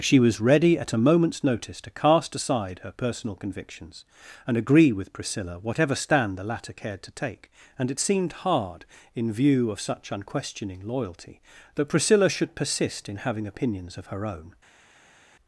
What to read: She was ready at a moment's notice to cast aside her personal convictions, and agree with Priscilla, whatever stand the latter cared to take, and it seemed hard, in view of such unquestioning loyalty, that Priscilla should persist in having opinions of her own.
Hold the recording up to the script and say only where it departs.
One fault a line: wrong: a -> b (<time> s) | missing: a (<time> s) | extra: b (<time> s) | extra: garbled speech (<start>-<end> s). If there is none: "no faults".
no faults